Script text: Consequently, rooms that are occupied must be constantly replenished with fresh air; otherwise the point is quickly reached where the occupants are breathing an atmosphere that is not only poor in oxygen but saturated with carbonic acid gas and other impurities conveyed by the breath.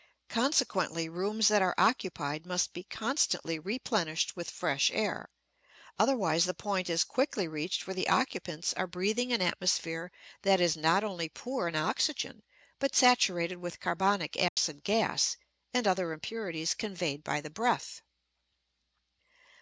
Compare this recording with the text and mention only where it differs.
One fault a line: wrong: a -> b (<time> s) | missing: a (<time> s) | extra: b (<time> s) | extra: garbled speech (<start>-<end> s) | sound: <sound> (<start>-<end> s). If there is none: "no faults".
sound: dropout (14.5-14.6 s)